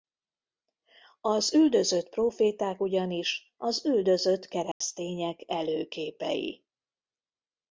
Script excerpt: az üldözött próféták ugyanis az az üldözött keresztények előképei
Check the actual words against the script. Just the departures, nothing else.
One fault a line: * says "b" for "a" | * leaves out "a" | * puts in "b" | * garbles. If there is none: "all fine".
* leaves out "az"